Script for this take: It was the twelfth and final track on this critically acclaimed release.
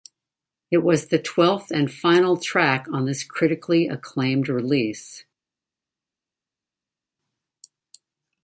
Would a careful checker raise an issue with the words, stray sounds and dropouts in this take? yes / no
no